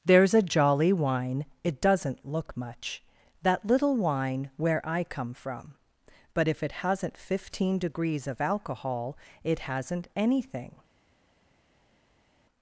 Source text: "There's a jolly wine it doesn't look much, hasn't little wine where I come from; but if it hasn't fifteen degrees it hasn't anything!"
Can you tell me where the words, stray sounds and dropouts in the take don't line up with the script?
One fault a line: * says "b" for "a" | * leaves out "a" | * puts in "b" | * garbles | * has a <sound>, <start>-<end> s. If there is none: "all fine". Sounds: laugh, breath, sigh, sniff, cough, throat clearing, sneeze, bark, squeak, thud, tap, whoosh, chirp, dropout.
* says "that" for "hasn't"
* puts in "of alcohol"